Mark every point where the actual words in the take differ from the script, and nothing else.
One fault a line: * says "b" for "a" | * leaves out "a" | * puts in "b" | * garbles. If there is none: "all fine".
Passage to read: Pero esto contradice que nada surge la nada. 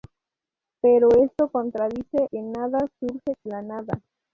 all fine